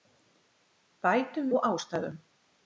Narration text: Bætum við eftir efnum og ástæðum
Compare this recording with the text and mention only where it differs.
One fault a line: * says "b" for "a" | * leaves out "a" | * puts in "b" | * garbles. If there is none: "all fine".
* leaves out "við eftir efnum"